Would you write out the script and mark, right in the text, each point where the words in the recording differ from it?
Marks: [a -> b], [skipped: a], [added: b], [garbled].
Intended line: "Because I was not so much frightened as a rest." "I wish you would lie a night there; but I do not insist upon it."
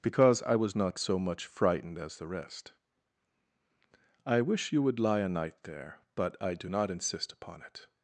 "Because I was not so much frightened as [a -> the] rest." "I wish you would lie a night there; but I do not insist upon it."